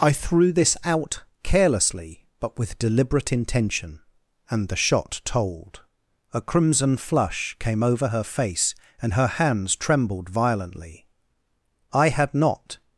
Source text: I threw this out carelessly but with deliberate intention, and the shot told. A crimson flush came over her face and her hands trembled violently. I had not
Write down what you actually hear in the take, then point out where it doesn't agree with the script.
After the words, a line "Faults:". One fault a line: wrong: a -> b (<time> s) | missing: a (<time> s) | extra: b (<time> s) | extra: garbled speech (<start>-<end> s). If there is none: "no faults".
I threw this out carelessly but with deliberate intention, and the shot told. A crimson flush came over her face and her hands trembled violently. I had not
Faults:
no faults